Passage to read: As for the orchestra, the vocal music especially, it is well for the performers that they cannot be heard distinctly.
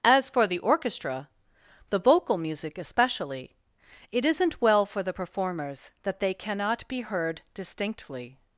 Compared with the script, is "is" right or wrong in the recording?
wrong